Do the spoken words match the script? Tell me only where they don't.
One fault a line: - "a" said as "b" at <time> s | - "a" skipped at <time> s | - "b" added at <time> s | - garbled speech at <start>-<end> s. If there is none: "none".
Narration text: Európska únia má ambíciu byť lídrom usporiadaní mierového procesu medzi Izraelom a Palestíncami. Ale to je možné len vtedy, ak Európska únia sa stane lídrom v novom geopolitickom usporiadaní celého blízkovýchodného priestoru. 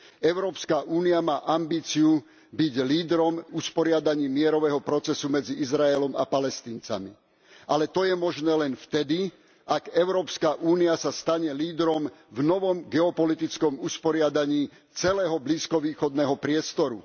none